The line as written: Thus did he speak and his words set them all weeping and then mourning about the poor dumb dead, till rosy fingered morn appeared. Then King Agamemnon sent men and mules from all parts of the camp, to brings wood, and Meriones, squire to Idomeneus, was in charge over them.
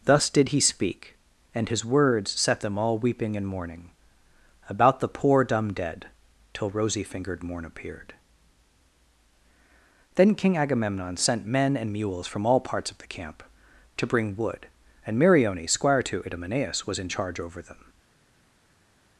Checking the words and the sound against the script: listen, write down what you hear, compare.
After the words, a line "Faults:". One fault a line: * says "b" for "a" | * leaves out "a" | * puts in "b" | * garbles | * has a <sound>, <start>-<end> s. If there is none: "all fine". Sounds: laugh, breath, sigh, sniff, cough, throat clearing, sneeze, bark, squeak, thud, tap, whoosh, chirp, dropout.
Thus did he speak and his words set them all weeping and mourning about the poor dumb dead, till rosy fingered morn appeared. Then King Agamemnon sent men and mules from all parts of the camp, to bring wood, and Meriones, squire to Idomeneus, was in charge over them.
Faults:
* leaves out "then"
* says "bring" for "brings"